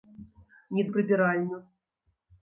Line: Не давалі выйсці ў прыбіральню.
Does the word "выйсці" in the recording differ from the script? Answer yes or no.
yes